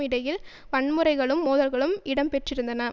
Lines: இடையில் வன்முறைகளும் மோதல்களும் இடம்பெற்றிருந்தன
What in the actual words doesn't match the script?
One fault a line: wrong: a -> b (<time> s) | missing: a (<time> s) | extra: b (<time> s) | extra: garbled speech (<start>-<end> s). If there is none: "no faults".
no faults